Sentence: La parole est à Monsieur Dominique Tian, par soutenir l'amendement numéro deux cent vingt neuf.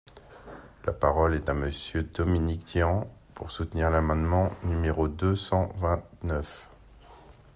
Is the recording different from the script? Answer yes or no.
yes